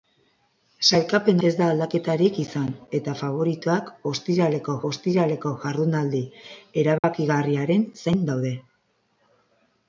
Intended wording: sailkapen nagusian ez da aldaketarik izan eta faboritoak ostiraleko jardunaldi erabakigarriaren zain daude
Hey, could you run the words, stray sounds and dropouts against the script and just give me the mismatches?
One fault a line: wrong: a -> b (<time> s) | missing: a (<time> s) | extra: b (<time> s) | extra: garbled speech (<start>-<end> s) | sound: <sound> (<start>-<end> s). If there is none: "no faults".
missing: nagusian (1.4 s)
extra: ostiraleko (4.9 s)
sound: dropout (7.0-7.0 s)